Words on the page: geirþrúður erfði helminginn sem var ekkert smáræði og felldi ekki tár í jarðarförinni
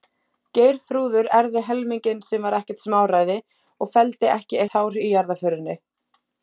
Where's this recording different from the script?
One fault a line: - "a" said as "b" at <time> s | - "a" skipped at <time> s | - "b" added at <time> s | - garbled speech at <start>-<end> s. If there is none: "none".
none